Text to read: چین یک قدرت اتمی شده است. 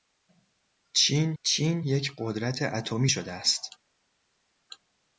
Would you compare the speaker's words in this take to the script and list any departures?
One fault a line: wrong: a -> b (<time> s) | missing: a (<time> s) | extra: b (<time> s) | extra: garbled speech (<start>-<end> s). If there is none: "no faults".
extra: چین (1.4 s)